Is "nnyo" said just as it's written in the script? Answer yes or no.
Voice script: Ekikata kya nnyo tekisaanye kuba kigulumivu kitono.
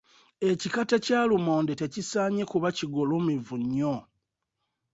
no